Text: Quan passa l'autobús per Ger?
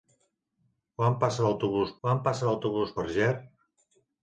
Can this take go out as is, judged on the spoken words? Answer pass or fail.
fail